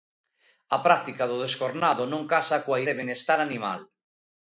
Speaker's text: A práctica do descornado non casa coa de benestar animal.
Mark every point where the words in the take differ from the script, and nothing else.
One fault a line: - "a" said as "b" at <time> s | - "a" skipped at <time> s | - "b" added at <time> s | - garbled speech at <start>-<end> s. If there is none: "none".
none